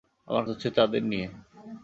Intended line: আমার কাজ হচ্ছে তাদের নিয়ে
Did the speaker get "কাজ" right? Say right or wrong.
wrong